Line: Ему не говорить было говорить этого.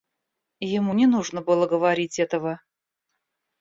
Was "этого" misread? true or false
false